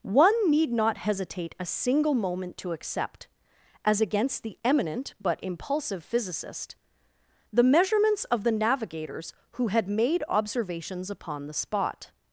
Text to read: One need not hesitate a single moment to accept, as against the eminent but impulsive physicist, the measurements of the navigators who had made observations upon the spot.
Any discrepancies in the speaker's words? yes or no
no